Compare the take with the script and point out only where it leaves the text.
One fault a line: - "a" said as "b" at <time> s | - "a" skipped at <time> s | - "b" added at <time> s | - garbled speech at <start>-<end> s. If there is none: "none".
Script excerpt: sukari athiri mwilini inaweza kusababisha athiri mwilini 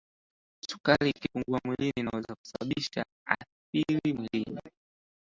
- "athiri" said as "ikipungua" at 1.1 s